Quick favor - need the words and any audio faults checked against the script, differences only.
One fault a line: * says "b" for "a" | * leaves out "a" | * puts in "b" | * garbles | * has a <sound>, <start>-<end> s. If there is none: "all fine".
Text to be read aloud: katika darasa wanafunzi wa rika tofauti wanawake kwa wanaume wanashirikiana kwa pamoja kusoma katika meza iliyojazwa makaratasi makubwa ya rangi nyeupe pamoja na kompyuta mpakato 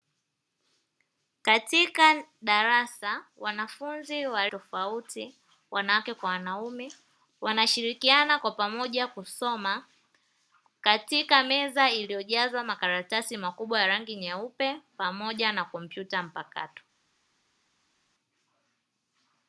* leaves out "rika"